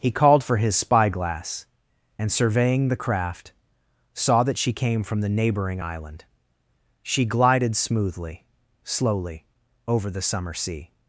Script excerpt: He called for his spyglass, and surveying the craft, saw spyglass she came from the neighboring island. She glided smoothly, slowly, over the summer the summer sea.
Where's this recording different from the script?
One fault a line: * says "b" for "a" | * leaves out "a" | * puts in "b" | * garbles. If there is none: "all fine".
* says "that" for "spyglass"
* leaves out "the summer"